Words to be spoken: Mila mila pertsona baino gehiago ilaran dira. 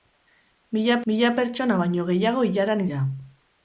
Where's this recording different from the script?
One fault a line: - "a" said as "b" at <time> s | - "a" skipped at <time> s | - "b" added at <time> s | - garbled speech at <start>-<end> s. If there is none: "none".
none